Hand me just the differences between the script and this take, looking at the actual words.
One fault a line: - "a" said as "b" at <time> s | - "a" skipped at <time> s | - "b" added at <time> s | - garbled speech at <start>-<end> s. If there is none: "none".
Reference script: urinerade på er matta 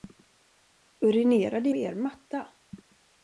none